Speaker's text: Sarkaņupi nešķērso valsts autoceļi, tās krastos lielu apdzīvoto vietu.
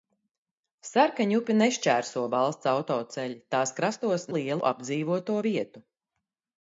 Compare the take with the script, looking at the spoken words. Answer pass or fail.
pass